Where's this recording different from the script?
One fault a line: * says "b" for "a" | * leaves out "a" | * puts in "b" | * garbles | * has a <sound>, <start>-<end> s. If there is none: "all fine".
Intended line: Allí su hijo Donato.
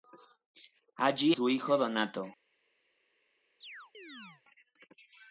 * has a chirp, 3.6-4.4 s